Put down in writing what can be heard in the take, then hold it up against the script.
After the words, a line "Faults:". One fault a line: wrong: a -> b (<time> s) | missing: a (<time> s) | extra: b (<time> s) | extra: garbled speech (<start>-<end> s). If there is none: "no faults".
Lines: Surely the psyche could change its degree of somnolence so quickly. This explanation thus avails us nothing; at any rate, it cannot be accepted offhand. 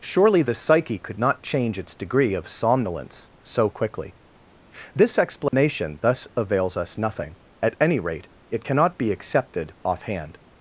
Surely the psyche could not change its degree of somnolence so quickly. This explanation thus avails us nothing; at any rate, it cannot be accepted offhand.
Faults:
extra: not (1.2 s)